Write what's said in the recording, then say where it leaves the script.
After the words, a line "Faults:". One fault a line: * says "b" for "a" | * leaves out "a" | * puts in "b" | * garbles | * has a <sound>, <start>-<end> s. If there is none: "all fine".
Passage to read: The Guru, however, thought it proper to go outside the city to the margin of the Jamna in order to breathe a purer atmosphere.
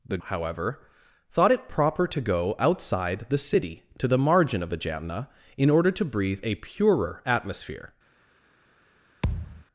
The However, thought it proper to go outside the city to the margin of the Jamna in order to breathe a purer atmosphere.
Faults:
* leaves out "Guru"
* has a thud, 9.2-9.6 s